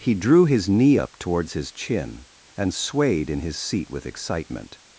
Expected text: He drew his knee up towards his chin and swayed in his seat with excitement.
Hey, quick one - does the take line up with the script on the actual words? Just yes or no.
yes